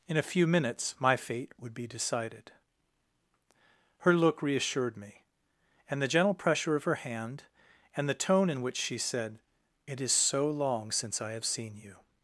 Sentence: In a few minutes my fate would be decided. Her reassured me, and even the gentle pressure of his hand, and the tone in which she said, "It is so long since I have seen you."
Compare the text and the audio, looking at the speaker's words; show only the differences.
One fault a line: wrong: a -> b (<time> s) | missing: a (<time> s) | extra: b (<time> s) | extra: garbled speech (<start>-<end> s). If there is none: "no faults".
extra: look (4.1 s)
missing: even (6.0 s)
wrong: his -> her (6.8 s)